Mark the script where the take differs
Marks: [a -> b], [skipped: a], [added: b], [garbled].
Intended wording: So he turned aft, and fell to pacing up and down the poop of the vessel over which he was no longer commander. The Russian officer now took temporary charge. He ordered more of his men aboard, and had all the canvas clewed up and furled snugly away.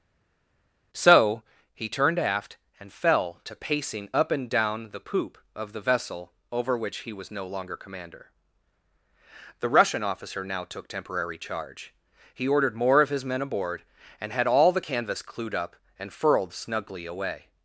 So he turned aft, and fell to pacing up and down the poop of the vessel over which he was no longer commander. The Russian officer now took temporary charge. He ordered more of his men aboard, and had all the canvas clewed up and furled snugly away.